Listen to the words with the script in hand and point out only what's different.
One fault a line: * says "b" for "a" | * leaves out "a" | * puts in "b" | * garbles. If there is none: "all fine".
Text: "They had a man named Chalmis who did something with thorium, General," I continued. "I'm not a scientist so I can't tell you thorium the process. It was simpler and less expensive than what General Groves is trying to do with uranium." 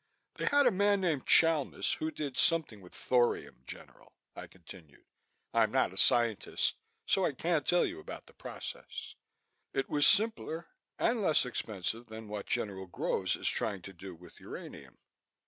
* says "about" for "thorium"